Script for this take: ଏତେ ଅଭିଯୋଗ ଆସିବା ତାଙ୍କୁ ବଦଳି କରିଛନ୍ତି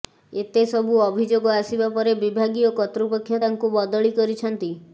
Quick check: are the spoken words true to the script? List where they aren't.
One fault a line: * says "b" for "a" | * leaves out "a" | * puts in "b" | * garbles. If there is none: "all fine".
* puts in "ସବୁ"
* puts in "ପରେ ବିଭାଗୀୟ କର୍ତ୍ତୃପକ୍ଷ"